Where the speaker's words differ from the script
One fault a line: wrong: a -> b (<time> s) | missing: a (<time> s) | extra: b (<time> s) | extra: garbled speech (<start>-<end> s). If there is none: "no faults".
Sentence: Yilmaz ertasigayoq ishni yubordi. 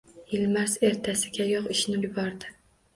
no faults